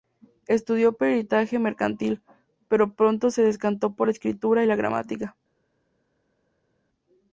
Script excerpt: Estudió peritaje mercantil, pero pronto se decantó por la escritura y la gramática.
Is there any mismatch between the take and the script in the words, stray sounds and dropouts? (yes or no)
no